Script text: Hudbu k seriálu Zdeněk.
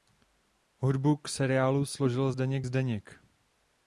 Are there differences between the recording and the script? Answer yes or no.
yes